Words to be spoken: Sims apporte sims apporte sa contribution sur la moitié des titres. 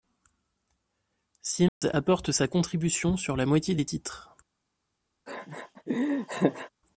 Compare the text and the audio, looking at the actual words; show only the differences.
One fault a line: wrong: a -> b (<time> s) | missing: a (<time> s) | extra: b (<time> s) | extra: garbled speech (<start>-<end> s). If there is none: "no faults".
missing: sims apporte (2.3 s)